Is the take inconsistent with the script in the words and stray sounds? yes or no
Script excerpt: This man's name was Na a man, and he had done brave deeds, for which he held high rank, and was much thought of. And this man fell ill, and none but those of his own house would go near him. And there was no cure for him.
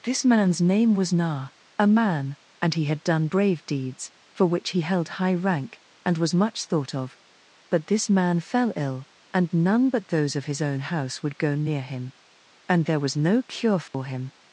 yes